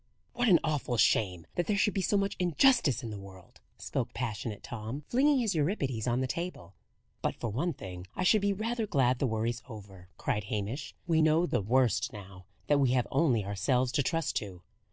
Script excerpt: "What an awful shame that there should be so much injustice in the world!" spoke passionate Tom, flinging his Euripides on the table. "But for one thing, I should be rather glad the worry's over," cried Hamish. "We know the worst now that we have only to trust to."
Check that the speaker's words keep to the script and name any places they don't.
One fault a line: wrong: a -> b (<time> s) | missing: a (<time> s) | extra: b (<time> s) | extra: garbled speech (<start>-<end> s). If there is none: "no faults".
extra: ourselves (13.4 s)